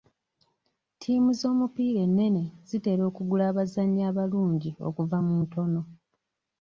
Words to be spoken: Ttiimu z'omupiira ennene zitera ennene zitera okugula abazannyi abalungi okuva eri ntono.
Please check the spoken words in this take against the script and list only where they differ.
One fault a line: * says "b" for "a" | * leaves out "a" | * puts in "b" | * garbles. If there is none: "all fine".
* leaves out "ennene zitera"
* says "mu" for "eri"